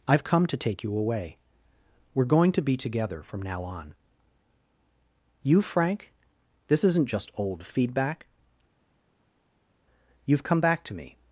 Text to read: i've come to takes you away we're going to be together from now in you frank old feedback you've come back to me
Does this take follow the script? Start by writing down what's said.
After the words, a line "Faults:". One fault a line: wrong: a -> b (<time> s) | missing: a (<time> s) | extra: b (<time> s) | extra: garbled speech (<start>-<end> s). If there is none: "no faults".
i've come to take you away we're going to be together from now on you frank this isn't just old feedback you've come back to me
Faults:
wrong: takes -> take (0.6 s)
wrong: in -> on (3.6 s)
extra: this isn't just (6.7 s)